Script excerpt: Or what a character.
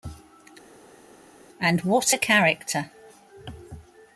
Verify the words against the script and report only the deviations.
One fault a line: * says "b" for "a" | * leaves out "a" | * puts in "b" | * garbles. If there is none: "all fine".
* says "And" for "Or"